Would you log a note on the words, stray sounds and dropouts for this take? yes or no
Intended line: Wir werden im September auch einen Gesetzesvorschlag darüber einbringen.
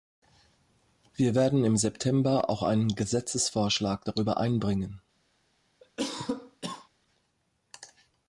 yes